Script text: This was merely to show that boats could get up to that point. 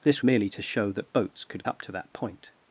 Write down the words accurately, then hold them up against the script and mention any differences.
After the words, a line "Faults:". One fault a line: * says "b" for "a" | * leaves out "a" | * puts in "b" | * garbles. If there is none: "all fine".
This merely to show that boats could up to that point.
Faults:
* leaves out "was"
* leaves out "get"